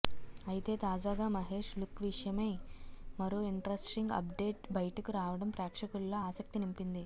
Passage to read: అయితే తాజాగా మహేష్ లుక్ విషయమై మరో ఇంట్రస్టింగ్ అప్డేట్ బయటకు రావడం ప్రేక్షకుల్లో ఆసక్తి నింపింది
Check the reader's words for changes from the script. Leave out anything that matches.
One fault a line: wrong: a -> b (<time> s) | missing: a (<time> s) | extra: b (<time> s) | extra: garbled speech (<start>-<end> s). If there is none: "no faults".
no faults